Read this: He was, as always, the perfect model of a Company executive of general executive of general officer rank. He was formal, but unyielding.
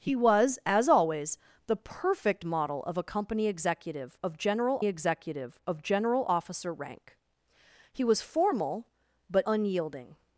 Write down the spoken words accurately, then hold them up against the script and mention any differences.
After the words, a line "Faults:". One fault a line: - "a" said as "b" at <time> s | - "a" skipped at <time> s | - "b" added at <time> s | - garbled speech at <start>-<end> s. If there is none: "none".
He was, as always, the perfect model of a Company executive of general executive of general officer rank. He was formal, but unyielding.
Faults:
none